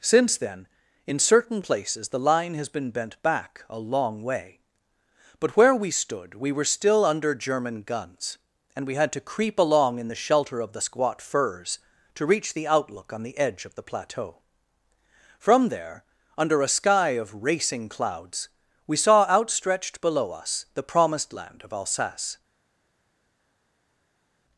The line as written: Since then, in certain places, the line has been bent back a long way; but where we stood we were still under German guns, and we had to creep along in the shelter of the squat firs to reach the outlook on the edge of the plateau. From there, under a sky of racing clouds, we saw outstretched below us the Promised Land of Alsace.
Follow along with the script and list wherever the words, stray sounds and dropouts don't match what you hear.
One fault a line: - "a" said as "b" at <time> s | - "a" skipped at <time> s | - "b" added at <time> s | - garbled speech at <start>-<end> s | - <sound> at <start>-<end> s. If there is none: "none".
none